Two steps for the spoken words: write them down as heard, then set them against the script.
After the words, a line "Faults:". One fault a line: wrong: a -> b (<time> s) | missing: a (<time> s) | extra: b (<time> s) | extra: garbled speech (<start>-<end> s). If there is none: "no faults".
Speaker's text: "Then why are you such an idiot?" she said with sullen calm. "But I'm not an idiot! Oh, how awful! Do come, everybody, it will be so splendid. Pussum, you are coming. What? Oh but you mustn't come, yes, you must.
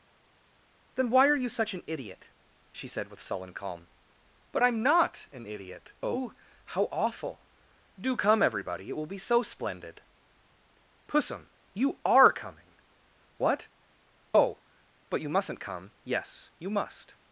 "Then why are you such an idiot?" she said with sullen calm. "But I'm not an idiot! Oh, how awful! Do come, everybody, it will be so splendid. Pussum, you are coming. What? Oh but you mustn't come, yes, you must.
Faults:
no faults